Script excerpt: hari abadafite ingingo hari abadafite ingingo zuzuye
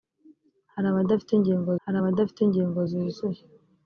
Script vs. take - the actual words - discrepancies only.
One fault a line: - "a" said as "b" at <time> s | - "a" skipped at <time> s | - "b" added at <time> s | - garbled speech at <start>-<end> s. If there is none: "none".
none